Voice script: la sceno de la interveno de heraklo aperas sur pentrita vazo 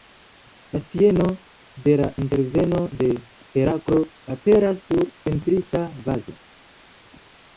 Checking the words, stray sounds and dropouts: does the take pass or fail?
pass